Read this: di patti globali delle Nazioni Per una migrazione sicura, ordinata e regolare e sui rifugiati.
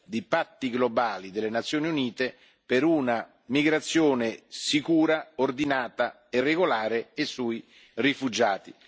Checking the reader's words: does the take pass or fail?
fail